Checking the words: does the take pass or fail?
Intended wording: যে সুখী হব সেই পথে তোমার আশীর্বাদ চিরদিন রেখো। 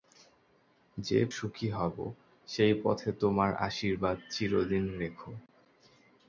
pass